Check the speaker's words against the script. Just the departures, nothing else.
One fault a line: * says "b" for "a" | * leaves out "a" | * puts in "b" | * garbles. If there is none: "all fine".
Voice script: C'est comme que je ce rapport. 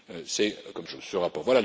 all fine